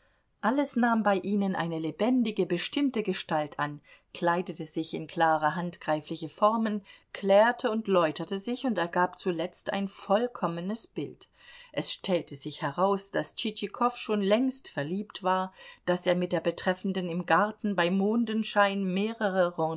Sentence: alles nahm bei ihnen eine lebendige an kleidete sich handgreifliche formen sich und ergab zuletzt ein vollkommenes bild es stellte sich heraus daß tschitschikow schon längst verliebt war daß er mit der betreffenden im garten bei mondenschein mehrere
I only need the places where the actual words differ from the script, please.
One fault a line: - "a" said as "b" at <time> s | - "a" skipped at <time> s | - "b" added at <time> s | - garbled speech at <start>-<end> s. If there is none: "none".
- "bestimmte gestalt" added at 2.5 s
- "in klare" added at 5.0 s
- "klärte und läuterte" added at 7.1 s